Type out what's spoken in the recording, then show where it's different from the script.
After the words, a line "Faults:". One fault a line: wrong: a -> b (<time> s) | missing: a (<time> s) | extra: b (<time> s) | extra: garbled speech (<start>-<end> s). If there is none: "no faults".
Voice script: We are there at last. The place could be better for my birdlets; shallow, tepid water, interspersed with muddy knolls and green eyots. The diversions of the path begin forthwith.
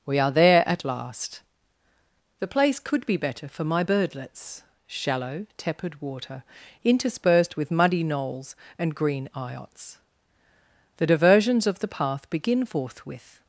We are there at last. The place could be better for my birdlets; shallow, tepid water, interspersed with muddy knolls and green eyots. The diversions of the path begin forthwith.
Faults:
no faults